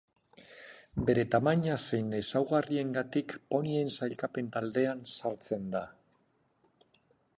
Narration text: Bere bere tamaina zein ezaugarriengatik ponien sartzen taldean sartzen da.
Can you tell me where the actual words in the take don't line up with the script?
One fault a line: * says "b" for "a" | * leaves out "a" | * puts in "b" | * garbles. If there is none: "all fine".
* leaves out "bere"
* says "sailkapen" for "sartzen"